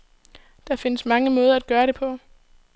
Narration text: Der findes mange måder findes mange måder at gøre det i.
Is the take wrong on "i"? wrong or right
wrong